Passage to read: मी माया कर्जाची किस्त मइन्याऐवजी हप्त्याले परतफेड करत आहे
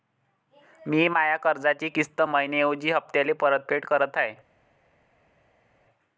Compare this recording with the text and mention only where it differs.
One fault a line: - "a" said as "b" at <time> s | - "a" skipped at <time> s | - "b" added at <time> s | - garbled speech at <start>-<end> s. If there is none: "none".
none